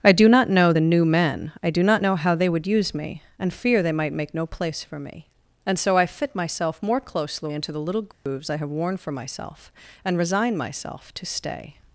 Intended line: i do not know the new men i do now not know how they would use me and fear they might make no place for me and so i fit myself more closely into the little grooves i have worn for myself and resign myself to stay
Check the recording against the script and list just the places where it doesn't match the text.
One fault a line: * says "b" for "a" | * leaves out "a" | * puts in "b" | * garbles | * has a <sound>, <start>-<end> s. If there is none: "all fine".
* leaves out "now"
* has a dropout, 8.1-8.3 s